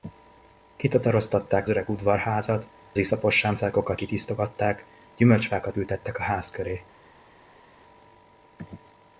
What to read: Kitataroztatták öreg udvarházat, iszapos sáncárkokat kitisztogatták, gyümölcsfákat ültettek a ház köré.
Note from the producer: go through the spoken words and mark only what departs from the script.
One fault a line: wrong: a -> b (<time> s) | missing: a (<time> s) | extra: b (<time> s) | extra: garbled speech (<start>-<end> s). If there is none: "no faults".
no faults